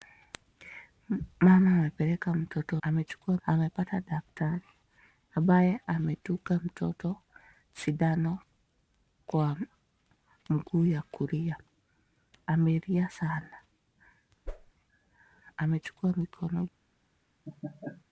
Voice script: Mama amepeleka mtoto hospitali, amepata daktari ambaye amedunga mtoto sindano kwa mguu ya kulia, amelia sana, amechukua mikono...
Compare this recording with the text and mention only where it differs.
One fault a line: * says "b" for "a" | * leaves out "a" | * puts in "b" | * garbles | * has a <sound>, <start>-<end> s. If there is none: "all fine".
* says "amechukua" for "hospitali"
* has a whoosh, 14.5-14.7 s
* has a laugh, 17.5-18.0 s